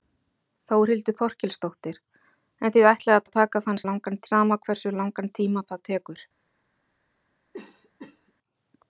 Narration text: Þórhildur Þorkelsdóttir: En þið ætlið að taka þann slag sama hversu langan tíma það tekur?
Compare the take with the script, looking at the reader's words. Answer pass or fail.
fail